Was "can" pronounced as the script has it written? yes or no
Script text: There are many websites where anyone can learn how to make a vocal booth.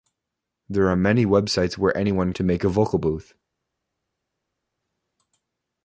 no